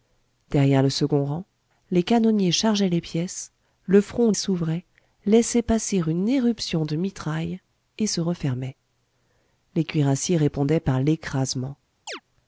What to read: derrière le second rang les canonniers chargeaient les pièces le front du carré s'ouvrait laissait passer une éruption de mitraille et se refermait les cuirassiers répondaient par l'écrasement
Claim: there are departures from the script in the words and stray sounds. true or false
true